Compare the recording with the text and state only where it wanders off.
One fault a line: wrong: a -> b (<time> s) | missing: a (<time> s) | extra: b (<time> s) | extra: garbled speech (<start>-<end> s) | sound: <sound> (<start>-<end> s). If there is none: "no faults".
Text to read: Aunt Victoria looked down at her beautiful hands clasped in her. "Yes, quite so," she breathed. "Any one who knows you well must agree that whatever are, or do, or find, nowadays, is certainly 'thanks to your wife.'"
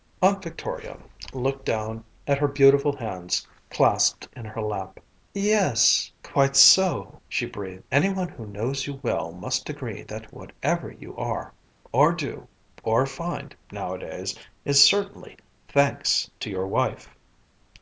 extra: lap (4.6 s)
extra: you (10.9 s)